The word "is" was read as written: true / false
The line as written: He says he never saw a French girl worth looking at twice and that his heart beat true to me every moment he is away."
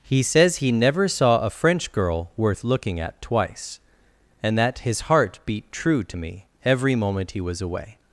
false